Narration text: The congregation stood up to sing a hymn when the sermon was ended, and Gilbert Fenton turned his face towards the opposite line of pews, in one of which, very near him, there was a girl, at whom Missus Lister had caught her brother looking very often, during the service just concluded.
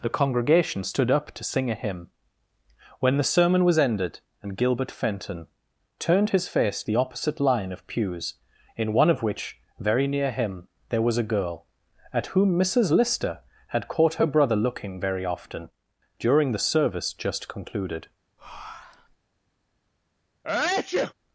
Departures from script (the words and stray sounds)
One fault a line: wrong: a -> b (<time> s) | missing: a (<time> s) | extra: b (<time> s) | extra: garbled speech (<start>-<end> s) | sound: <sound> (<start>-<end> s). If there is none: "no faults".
missing: towards (6.8 s)
sound: breath (18.4-19.2 s)
sound: sneeze (20.4-21.1 s)